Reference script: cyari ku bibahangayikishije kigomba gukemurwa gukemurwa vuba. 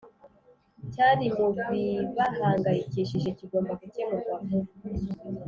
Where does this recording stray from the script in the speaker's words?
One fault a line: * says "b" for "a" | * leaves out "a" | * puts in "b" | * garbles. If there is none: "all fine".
* says "mu" for "ku"
* leaves out "gukemurwa"